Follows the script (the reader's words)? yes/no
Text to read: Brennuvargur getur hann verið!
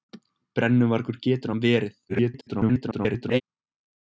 no